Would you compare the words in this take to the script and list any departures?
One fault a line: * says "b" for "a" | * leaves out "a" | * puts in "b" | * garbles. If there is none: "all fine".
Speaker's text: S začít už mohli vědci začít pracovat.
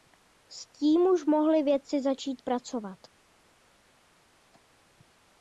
* says "tím" for "začít"